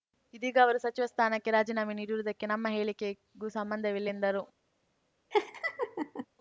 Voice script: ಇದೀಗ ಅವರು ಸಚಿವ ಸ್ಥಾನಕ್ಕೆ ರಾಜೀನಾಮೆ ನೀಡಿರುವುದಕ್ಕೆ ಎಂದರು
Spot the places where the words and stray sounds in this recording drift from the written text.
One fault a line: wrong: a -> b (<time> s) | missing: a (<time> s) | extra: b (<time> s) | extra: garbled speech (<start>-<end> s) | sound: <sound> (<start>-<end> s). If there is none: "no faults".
extra: ನಮ್ಮ ಹೇಳಿಕೆಗೂ ಸಂಬಂಧವಿಲ್ಲ (2.5 s)
sound: laugh (5.3-6.3 s)